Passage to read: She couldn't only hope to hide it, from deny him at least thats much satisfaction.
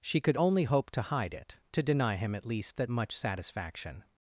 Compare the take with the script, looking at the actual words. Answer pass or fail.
fail